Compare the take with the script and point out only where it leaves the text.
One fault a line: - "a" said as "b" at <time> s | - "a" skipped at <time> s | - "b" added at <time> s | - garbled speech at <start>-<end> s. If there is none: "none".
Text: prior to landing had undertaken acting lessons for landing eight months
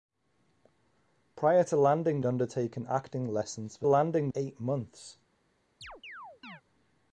none